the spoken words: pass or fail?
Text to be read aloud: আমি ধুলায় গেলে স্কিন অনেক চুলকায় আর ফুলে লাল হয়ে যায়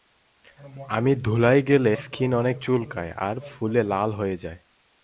pass